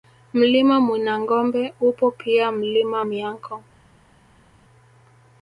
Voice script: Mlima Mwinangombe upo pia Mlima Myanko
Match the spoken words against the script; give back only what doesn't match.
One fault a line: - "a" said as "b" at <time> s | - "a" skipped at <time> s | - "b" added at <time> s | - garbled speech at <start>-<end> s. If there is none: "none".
none